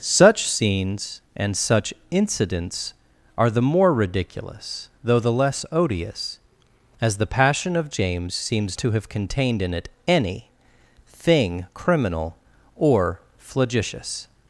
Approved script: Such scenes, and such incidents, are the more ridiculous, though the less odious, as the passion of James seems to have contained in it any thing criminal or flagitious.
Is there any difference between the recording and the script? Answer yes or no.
no